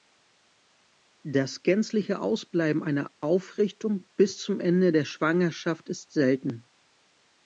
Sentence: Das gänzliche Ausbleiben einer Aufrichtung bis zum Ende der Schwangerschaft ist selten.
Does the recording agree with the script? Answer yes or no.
yes